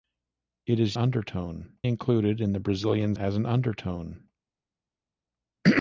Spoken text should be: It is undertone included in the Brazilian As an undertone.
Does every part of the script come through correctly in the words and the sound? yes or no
yes